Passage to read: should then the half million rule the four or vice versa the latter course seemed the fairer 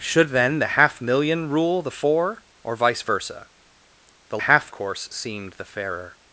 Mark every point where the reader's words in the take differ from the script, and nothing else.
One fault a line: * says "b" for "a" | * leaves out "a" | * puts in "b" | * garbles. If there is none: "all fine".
* says "half" for "latter"